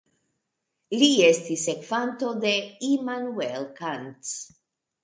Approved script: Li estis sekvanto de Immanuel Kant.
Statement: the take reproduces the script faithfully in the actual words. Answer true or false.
true